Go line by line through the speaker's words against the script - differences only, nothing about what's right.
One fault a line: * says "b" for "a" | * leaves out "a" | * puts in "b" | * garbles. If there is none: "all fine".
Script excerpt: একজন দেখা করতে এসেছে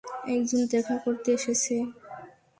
all fine